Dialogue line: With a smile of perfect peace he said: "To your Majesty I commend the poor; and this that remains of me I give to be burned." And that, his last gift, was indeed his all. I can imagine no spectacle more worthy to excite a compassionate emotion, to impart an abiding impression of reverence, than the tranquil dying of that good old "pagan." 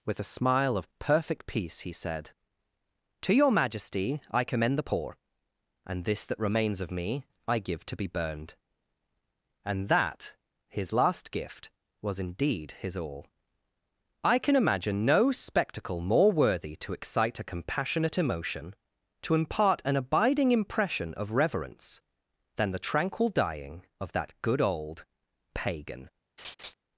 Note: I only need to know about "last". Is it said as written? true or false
true